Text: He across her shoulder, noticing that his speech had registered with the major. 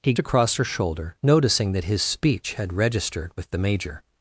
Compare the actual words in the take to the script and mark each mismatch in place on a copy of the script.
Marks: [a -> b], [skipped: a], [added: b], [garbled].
He across her shoulder, noticing that his speech had registered with the major.